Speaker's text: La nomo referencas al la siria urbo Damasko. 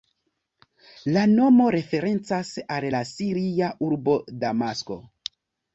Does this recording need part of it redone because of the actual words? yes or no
no